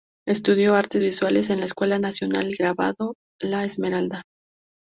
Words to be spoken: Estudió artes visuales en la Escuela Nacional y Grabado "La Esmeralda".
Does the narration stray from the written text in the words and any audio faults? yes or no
no